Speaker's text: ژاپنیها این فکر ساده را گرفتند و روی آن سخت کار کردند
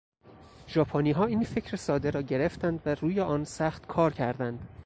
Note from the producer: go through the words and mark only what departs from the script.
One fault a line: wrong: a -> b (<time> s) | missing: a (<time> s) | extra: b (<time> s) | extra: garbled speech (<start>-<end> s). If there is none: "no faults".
no faults